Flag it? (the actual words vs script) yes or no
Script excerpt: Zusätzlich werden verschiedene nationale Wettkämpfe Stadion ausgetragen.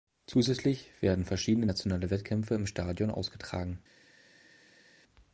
yes